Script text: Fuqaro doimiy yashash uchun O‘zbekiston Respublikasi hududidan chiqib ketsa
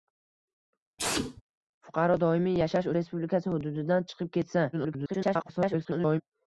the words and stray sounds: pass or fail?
fail